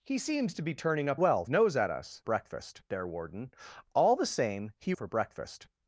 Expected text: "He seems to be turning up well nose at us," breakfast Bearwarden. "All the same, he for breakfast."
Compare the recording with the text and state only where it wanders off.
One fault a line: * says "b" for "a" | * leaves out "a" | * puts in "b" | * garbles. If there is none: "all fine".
all fine